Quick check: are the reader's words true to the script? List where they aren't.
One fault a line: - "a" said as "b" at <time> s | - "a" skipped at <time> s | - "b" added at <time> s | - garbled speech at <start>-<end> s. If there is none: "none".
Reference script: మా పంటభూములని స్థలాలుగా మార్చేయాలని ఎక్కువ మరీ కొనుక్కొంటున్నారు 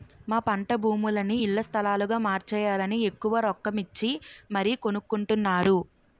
- "ఇళ్ల" added at 1.4 s
- "రొక్కమిచ్చి" added at 3.5 s